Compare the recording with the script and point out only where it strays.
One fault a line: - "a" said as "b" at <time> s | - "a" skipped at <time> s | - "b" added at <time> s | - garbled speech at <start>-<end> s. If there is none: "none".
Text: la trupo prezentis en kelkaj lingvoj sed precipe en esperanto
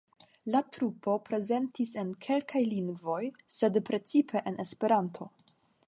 none